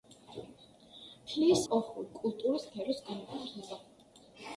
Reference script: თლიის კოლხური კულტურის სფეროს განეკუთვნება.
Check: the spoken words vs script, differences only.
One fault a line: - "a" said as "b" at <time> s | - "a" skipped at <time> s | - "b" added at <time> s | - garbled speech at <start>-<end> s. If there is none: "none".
none